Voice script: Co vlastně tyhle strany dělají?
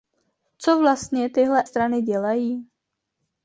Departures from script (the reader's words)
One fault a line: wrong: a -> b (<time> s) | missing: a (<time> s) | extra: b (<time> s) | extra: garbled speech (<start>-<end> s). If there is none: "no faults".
no faults